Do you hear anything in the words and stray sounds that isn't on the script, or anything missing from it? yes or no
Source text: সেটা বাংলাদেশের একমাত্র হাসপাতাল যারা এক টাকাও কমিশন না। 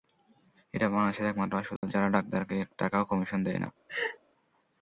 yes